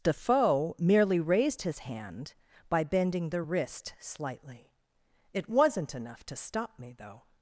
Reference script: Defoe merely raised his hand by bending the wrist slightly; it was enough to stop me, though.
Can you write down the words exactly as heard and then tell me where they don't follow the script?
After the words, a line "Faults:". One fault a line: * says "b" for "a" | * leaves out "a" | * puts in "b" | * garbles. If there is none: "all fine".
Defoe merely raised his hand by bending the wrist slightly; it wasn't enough to stop me, though.
Faults:
* says "wasn't" for "was"